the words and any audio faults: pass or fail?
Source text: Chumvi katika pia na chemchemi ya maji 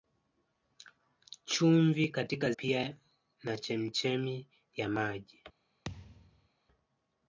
fail